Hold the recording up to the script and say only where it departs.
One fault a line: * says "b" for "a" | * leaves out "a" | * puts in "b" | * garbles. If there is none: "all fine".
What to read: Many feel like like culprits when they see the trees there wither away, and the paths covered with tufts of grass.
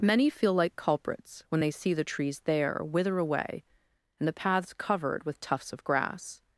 * leaves out "like"